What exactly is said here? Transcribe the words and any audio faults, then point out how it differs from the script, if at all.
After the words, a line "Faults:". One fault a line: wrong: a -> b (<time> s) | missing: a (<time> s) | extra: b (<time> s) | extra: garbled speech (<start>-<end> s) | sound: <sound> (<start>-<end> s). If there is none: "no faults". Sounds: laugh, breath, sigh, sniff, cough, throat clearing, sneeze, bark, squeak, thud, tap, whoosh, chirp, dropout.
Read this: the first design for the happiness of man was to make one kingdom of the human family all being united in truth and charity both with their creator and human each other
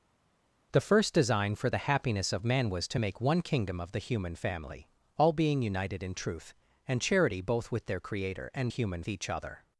the first design for the happiness of man was to make one kingdom of the human family all being united in truth and charity both with their creator and human each other
Faults:
no faults